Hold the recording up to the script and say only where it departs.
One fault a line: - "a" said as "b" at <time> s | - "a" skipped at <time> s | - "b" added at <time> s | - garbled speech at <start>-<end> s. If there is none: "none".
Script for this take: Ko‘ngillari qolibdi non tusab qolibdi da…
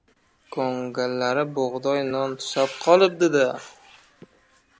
- "qolibdi" said as "bug‘doy" at 1.6 s